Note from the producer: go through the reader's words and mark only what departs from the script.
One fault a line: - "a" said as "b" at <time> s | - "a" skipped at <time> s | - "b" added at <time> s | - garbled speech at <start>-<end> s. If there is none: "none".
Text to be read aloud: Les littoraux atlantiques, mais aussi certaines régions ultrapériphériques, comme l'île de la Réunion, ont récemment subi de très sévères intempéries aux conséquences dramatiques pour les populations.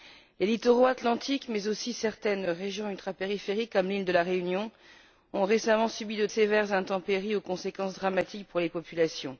- "très" skipped at 6.3 s